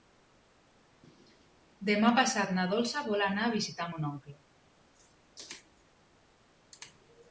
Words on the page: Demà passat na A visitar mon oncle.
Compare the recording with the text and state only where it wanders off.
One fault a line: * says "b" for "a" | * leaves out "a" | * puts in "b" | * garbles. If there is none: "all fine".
* puts in "Dolça vol anar"